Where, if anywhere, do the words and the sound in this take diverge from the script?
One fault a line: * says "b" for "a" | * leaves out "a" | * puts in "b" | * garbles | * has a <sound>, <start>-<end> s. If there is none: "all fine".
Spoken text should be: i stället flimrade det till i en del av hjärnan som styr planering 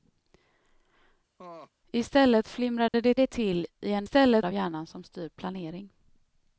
* has a laugh, 1.4-1.7 s
* has a dropout, 2.9-2.9 s
* puts in "det"
* says "stället" for "del"